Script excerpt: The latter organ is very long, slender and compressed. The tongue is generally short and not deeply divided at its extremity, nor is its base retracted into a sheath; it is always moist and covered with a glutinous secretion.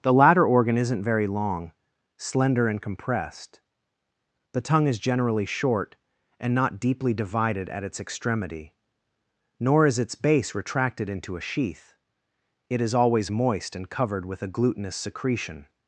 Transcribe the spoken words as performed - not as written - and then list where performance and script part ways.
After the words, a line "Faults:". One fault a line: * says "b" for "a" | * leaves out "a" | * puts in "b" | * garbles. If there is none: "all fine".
The latter organ isn't very long, slender and compressed. The tongue is generally short and not deeply divided at its extremity, nor is its base retracted into a sheath; it is always moist and covered with a glutinous secretion.
Faults:
* says "isn't" for "is"